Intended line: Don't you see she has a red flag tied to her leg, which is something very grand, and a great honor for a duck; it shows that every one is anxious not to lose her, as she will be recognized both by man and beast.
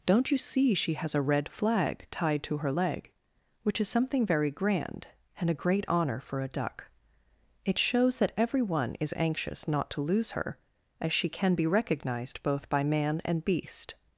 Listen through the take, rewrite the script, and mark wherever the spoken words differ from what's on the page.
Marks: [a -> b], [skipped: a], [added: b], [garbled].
Don't you see she has a red flag tied to her leg, which is something very grand, and a great honor for a duck; it shows that every one is anxious not to lose her, as she [will -> can] be recognized both by man and beast.